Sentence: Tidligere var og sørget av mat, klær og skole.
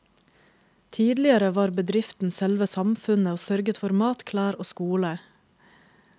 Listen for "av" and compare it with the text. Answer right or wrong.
wrong